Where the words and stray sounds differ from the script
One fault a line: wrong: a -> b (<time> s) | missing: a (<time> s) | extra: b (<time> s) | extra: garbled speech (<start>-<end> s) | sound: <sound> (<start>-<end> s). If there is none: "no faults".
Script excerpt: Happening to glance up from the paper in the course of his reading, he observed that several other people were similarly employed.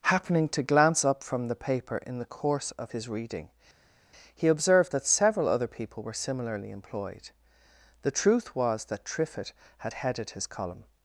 extra: The truth was that Triffitt had headed his column (8.0 s)